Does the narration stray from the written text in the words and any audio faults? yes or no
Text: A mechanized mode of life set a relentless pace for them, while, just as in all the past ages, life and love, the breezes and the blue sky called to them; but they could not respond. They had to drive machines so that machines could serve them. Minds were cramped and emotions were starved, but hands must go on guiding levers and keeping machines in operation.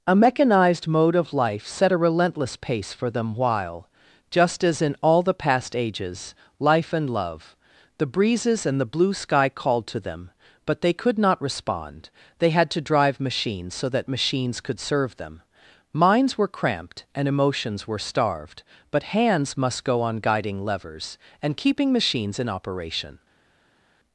no